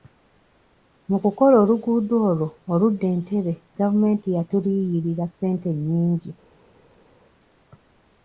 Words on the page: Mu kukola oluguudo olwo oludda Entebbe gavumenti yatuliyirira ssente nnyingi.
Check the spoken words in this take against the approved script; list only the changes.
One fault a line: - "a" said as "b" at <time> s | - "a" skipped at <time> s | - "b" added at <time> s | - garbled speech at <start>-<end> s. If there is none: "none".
none